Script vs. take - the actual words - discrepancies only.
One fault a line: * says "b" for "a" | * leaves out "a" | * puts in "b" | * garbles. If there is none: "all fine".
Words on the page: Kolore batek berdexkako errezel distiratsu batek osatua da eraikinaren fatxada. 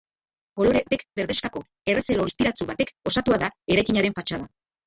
all fine